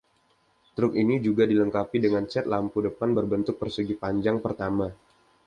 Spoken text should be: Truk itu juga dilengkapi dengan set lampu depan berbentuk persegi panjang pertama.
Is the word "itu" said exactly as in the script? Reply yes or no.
no